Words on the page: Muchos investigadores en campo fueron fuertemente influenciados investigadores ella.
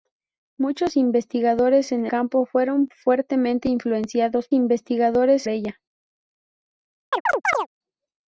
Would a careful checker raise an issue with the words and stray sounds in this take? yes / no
yes